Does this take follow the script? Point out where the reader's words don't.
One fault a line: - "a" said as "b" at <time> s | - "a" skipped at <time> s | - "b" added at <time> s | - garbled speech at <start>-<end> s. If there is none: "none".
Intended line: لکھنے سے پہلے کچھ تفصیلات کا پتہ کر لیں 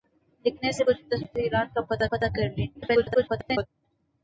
- "پہلے" skipped at 0.8 s
- "پتہ" added at 2.1 s
- garbled speech at 2.7-3.7 s